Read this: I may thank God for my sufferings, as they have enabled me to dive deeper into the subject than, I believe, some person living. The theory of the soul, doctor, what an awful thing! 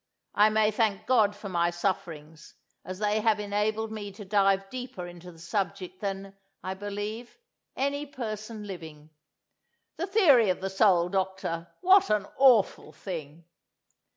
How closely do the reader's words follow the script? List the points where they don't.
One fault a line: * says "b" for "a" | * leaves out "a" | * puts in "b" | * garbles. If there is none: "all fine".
* says "any" for "some"